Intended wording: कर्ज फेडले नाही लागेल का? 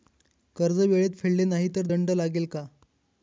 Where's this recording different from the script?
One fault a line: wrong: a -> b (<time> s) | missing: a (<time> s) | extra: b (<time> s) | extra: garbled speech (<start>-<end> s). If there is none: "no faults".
extra: वेळेत (0.8 s)
extra: तर दंड (1.8 s)